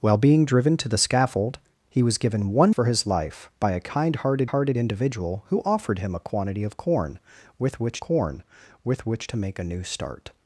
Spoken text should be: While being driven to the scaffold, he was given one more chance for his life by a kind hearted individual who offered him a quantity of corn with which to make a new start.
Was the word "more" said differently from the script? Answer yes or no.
yes